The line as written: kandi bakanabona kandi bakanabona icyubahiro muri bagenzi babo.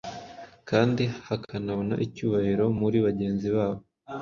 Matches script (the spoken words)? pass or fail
fail